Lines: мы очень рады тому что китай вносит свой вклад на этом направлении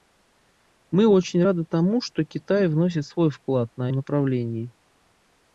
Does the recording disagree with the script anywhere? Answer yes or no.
yes